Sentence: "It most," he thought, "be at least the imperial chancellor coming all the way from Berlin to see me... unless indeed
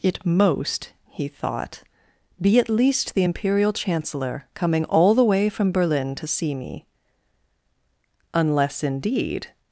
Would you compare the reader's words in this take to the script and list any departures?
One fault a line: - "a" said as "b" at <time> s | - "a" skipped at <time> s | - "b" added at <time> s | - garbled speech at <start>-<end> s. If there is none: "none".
none